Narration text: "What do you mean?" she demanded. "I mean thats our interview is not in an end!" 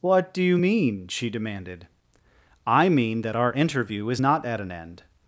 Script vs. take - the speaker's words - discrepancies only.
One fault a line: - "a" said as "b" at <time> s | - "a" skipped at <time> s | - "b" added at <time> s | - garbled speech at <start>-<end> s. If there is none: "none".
- "thats" said as "that" at 3.2 s
- "in" said as "at" at 4.4 s